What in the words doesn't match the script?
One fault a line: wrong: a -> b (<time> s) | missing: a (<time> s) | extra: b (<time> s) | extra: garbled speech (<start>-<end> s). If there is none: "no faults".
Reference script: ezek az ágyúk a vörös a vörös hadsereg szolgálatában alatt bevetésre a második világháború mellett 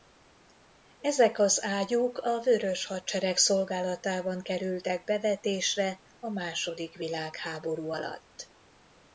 missing: a vörös (2.9 s)
wrong: alatt -> kerültek (4.4 s)
wrong: mellett -> alatt (7.9 s)